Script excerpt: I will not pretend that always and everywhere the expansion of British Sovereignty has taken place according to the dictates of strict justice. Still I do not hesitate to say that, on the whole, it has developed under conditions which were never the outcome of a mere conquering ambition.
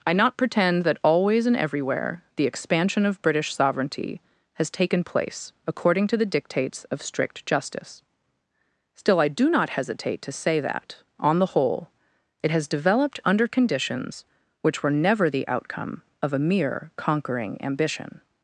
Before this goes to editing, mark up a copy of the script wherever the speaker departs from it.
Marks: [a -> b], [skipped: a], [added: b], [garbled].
I [skipped: will] not pretend that always and everywhere the expansion of British Sovereignty has taken place according to the dictates of strict justice. Still I do not hesitate to say that, on the whole, it has developed under conditions which were never the outcome of a mere conquering ambition.